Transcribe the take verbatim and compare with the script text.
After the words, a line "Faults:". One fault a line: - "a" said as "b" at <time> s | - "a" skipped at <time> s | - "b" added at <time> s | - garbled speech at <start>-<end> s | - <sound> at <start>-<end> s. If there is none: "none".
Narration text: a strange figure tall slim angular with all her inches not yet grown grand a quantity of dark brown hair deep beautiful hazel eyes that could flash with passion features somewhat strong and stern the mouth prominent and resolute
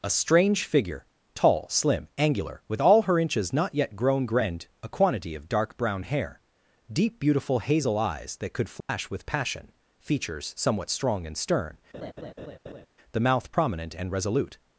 a strange figure tall slim angular with all her inches not yet grown grand a quantity of dark brown hair deep beautiful hazel eyes that could flash with passion features somewhat strong and stern the mouth prominent and resolute
Faults:
- dropout at 8.8-8.9 s
- laugh at 11.9-12.9 s